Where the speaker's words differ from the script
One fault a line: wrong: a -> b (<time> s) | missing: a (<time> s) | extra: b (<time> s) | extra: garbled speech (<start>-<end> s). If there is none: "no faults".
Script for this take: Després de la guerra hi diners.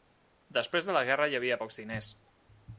extra: havia pocs (1.4 s)